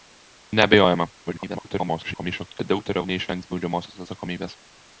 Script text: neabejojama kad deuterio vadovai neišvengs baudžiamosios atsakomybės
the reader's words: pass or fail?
fail